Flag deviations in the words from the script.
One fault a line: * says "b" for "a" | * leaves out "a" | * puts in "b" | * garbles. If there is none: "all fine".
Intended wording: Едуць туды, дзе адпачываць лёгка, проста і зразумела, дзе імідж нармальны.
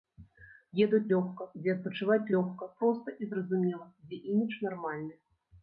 * says "лёгка" for "туды"